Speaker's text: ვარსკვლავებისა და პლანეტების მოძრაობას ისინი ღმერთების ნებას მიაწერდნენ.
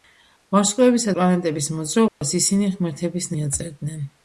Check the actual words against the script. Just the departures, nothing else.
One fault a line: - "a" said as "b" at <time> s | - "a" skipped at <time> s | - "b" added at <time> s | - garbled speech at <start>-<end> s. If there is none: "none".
- "და" skipped at 1.1 s
- "ნებას" skipped at 3.3 s